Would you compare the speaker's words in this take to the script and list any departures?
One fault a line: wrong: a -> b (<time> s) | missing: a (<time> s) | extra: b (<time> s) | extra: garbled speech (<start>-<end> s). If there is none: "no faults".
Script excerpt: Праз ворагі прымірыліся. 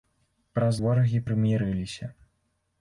no faults